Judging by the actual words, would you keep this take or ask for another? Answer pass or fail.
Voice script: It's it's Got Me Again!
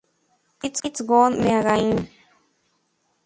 pass